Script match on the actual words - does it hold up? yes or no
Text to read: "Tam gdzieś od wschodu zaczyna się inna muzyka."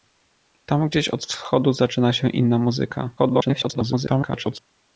no